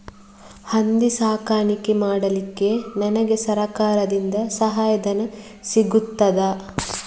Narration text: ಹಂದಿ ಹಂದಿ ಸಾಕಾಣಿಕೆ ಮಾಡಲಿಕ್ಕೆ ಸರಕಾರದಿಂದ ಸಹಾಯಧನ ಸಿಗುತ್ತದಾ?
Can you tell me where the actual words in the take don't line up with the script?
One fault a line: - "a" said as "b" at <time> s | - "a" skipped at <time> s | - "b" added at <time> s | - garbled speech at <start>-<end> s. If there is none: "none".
- "ಹಂದಿ" skipped at 1.1 s
- "ನನಗೆ" added at 3.0 s